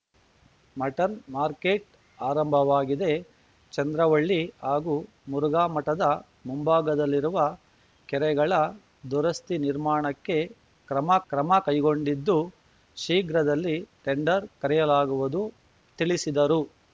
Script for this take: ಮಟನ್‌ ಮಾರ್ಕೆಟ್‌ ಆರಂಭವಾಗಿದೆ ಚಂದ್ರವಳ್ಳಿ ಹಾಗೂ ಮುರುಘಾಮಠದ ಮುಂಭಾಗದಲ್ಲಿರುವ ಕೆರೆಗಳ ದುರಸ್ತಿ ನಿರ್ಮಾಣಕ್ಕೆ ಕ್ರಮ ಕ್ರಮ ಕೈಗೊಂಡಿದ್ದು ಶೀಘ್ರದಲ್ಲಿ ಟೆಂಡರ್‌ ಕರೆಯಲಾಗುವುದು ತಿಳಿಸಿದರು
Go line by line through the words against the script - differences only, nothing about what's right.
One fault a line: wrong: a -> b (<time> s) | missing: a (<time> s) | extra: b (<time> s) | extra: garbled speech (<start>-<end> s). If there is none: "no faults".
no faults